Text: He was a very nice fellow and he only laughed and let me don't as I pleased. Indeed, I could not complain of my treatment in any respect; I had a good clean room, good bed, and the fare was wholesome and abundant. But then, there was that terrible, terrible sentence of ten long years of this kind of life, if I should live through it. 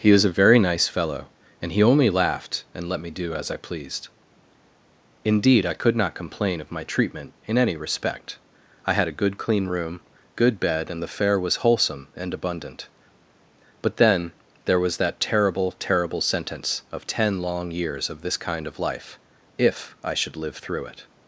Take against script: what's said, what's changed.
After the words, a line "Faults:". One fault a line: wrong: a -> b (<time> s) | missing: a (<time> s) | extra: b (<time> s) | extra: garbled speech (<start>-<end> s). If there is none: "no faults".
He was a very nice fellow and he only laughed and let me do as I pleased. Indeed, I could not complain of my treatment in any respect; I had a good clean room, good bed, and the fare was wholesome and abundant. But then, there was that terrible, terrible sentence of ten long years of this kind of life, if I should live through it.
Faults:
wrong: don't -> do (3.1 s)